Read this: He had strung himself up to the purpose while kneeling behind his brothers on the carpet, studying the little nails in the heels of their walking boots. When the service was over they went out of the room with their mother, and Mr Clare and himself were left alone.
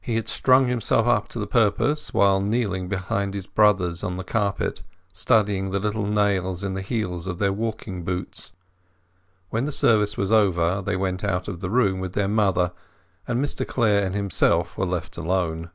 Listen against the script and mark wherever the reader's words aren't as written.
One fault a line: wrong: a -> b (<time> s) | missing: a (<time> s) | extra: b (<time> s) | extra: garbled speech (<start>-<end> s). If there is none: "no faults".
no faults